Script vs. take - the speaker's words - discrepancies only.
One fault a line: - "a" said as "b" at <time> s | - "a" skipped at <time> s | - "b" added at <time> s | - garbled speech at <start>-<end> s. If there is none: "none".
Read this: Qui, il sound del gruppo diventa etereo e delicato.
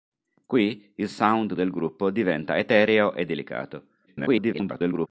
- garbled speech at 4.1-5.1 s